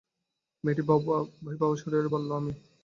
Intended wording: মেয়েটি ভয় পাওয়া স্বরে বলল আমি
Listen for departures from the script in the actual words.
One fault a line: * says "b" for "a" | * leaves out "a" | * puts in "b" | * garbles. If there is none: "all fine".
all fine